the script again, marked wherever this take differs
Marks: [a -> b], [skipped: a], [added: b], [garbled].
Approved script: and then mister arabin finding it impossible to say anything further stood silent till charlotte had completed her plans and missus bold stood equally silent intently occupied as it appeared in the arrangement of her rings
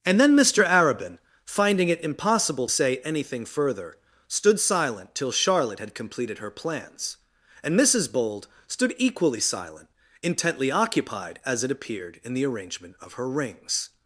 and then mister arabin finding it impossible [skipped: to] say anything further stood silent till charlotte had completed her plans and missus bold stood equally silent intently occupied as it appeared in the arrangement of her rings